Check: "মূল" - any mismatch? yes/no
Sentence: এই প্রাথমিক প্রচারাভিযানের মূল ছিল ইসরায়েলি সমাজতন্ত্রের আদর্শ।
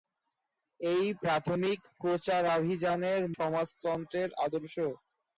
yes